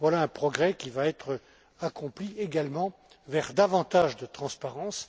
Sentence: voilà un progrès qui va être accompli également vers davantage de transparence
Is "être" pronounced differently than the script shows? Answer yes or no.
no